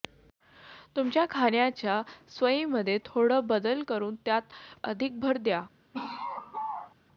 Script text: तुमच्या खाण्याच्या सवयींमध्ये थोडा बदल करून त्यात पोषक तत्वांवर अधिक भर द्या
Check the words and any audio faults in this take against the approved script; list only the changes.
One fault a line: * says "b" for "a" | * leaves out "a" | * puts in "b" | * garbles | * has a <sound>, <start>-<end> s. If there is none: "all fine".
* leaves out "पोषक तत्वांवर"
* has a laugh, 5.9-7.0 s